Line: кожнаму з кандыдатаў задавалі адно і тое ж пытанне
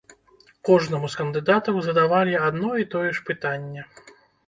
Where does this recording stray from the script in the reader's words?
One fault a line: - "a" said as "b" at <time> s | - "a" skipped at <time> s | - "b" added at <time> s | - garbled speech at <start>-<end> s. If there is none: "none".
none